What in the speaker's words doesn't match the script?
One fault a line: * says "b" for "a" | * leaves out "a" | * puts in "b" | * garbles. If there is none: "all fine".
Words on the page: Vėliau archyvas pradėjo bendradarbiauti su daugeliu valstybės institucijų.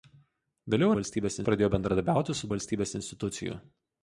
* says "valstybės" for "archyvas"
* leaves out "daugeliu"